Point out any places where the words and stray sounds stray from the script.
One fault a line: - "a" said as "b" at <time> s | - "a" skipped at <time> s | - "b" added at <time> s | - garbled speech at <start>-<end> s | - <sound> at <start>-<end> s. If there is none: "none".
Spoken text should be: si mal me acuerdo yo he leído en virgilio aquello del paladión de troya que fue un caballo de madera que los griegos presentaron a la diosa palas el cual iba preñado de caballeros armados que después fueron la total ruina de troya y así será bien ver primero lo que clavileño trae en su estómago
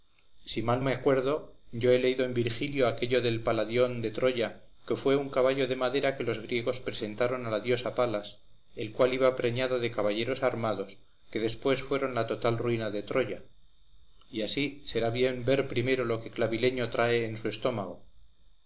none